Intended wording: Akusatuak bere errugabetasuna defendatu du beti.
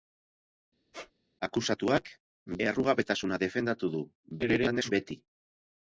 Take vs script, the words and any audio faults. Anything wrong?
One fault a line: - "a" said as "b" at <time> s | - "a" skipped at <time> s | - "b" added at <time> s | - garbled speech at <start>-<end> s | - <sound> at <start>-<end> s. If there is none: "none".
- squeak at 0.9-1.1 s
- "bere" skipped at 2.1 s
- garbled speech at 4.4-4.9 s